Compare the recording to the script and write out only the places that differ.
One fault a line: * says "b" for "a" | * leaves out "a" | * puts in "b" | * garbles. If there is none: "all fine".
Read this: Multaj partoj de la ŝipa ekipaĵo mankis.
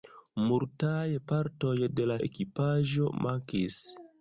* leaves out "ŝipa"